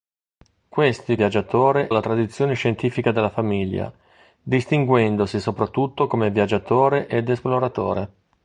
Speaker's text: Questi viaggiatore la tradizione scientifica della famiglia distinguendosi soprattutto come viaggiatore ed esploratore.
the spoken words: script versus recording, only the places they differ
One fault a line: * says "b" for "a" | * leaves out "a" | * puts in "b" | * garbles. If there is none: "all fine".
all fine